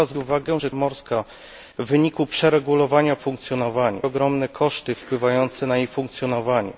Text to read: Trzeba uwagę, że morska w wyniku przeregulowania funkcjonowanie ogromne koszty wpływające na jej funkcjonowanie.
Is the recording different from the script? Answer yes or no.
no